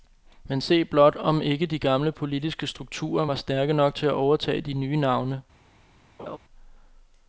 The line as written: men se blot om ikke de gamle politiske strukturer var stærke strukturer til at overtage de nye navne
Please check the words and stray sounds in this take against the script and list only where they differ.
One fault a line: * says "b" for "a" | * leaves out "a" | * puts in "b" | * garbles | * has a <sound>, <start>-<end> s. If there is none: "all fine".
* says "nok" for "strukturer"
* has a laugh, 6.2-6.4 s